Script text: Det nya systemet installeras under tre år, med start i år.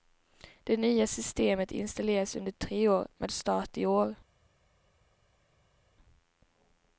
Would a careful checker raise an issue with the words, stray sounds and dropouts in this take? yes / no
no